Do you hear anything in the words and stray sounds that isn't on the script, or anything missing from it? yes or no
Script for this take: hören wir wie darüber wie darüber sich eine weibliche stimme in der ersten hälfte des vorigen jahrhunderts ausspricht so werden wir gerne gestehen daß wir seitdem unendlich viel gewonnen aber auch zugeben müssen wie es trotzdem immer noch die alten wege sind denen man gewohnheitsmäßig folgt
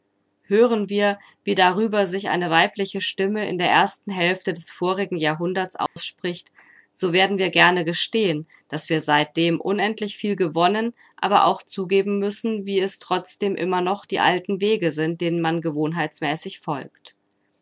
yes